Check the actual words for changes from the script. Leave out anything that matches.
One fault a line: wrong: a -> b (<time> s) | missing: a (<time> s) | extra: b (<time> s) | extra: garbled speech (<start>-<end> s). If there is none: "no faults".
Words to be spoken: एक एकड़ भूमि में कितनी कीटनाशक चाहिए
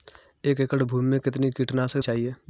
no faults